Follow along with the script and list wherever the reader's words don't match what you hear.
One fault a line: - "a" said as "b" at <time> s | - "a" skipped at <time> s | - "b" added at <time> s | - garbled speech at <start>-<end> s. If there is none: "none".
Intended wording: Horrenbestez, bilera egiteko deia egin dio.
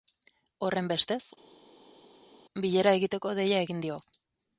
none